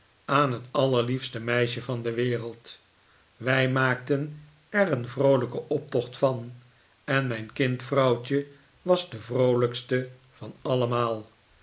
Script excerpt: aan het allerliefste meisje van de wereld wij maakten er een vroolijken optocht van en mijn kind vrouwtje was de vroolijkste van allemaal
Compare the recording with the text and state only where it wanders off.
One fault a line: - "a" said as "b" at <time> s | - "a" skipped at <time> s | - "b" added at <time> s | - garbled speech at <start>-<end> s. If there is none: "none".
none